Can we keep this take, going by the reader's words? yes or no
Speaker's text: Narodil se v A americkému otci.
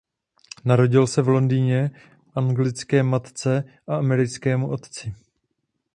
no